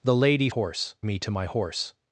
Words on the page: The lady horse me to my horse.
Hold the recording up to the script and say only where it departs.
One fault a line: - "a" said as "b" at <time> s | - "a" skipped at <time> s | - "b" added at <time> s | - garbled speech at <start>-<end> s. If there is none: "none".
none